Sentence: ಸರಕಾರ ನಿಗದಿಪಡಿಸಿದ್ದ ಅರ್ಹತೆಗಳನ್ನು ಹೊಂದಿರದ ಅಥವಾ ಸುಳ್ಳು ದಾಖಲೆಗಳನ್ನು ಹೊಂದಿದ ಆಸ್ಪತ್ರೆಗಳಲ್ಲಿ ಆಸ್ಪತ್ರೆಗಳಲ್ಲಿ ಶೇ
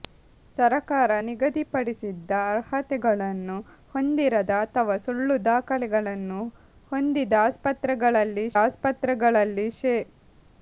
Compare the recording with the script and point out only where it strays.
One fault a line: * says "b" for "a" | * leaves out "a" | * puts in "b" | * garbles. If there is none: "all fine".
all fine